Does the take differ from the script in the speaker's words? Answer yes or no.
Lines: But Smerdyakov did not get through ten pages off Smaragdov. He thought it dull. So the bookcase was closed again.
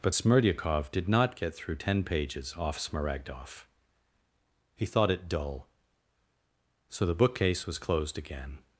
no